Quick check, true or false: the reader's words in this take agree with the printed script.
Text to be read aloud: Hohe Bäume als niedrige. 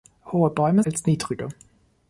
true